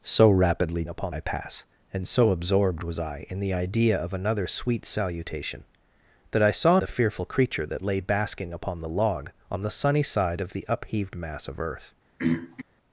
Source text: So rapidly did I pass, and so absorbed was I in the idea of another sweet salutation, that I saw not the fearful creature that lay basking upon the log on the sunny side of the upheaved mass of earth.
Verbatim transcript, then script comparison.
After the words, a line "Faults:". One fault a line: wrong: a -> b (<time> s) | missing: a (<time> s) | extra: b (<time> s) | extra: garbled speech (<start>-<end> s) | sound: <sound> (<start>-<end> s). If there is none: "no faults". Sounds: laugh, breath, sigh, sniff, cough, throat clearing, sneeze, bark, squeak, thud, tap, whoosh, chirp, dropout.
So rapidly upon I pass, and so absorbed was I in the idea of another sweet salutation, that I saw the fearful creature that lay basking upon the log on the sunny side of the upheaved mass of earth.
Faults:
wrong: did -> upon (0.9 s)
missing: not (6.8 s)
sound: throat clearing (12.2-12.6 s)